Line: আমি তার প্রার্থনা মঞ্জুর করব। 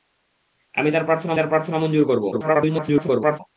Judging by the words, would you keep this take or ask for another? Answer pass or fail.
fail